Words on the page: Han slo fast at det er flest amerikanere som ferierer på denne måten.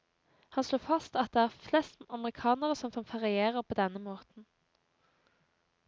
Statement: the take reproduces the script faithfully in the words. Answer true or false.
false